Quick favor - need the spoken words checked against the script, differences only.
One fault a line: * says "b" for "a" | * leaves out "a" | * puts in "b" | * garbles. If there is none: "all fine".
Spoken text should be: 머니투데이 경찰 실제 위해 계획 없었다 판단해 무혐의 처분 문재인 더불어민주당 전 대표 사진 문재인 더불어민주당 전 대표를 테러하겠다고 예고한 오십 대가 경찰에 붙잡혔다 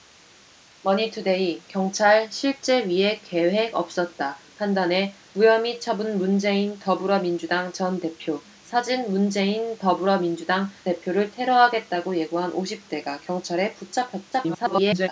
* leaves out "전"
* garbles